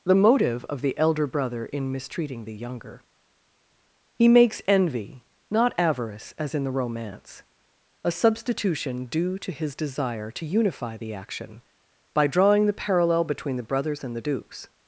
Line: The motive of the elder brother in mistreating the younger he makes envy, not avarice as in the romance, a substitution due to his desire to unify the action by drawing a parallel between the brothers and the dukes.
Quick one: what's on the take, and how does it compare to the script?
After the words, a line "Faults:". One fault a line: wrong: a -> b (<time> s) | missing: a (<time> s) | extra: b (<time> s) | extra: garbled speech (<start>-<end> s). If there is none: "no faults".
The motive of the elder brother in mistreating the younger he makes envy, not avarice as in the romance, a substitution due to his desire to unify the action by drawing the parallel between the brothers and the dukes.
Faults:
wrong: a -> the (12.7 s)